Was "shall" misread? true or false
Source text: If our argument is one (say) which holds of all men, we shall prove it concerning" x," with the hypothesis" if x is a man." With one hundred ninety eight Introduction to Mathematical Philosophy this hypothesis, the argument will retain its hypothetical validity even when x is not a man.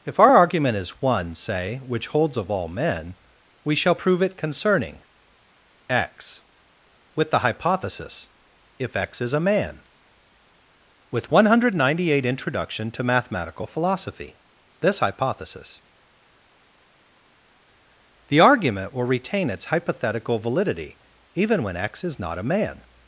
false